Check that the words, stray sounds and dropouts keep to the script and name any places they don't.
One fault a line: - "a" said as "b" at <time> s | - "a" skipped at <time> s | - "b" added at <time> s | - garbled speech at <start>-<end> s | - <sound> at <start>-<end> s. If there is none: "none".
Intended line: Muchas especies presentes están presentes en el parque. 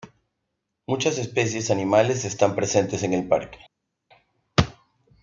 - "presentes" said as "animales" at 1.7 s